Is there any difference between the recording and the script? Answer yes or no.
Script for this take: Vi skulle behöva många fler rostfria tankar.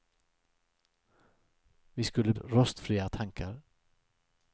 yes